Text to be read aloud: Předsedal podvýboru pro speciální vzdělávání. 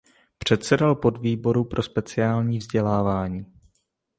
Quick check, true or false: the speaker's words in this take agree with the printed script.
true